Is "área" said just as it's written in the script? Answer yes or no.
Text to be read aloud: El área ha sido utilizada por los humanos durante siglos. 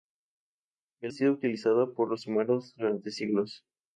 no